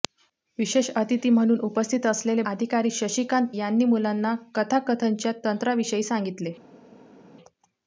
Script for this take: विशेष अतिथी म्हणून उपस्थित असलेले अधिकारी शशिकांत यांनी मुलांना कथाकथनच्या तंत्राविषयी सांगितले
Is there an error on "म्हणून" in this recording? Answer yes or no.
no